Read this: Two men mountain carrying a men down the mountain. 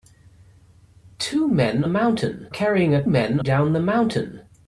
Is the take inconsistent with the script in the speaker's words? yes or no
no